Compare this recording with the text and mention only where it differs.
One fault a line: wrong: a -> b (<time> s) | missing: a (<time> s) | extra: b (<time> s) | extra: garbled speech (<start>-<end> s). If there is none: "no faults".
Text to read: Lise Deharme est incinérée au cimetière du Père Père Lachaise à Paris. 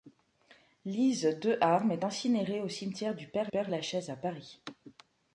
no faults